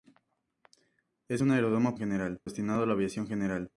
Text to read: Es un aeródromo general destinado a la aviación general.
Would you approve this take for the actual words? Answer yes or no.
yes